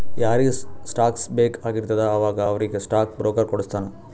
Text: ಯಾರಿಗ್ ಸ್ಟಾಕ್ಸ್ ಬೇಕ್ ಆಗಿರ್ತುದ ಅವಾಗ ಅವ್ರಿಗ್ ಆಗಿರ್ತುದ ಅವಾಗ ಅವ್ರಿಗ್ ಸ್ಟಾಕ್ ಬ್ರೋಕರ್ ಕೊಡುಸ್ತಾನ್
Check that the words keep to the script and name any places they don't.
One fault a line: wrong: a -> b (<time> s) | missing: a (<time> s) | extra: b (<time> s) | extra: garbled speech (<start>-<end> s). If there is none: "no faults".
missing: ಆಗಿರ್ತುದ ಅವಾಗ ಅವ್ರಿಗ್ (2.8 s)